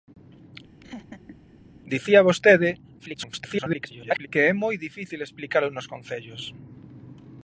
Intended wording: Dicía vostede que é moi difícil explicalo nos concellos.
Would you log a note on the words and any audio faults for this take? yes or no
yes